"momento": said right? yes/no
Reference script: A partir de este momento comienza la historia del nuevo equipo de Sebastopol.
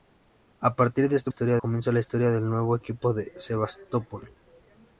no